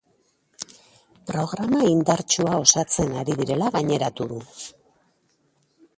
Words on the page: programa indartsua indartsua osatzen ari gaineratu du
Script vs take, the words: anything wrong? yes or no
yes